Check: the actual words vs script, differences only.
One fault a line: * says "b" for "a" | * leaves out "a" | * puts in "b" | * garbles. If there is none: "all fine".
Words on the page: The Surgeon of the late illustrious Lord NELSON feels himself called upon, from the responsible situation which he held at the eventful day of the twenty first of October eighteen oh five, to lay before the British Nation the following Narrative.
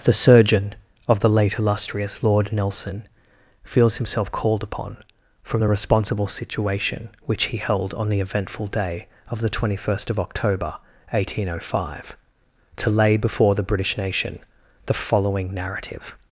* says "on" for "at"